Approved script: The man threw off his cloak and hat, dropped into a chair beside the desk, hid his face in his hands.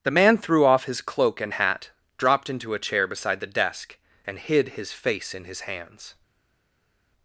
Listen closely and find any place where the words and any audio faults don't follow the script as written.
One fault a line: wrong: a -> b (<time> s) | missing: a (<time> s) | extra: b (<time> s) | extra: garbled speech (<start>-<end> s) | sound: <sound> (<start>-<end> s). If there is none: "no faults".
extra: and (4.2 s)